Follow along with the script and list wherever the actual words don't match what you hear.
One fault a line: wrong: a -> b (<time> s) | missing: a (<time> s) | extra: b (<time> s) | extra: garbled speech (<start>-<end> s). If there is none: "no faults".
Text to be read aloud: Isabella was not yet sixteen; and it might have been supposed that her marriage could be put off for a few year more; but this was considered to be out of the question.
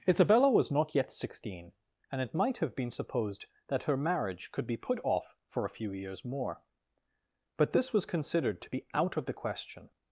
wrong: year -> years (5.9 s)